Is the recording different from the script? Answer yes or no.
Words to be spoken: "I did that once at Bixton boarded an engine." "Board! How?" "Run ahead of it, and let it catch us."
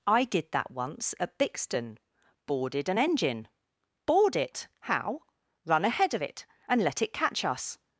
yes